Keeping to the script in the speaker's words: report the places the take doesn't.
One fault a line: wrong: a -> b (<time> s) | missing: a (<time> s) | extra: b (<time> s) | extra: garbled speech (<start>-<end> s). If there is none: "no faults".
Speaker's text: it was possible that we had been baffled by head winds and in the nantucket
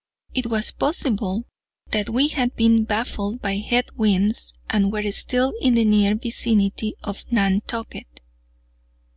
extra: were still (4.9 s)
extra: near vicinity of (5.8 s)